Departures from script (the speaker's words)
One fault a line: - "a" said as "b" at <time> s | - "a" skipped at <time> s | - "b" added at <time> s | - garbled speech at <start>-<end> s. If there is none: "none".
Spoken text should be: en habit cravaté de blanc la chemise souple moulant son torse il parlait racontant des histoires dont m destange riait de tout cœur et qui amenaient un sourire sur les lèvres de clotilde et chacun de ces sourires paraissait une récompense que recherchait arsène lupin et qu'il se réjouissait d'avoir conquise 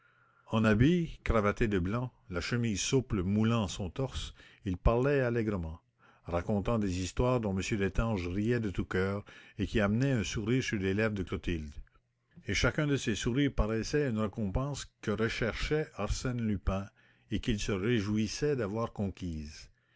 - "allègrement" added at 5.2 s